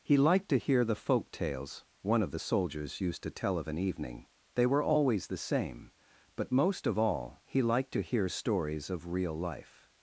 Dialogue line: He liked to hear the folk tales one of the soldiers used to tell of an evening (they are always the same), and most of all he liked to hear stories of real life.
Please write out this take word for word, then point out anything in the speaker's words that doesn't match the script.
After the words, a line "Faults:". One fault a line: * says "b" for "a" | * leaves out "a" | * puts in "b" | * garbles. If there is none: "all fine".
He liked to hear the folk tales one of the soldiers used to tell of an evening (they were always the same), but most of all he liked to hear stories of real life.
Faults:
* says "were" for "are"
* says "but" for "and"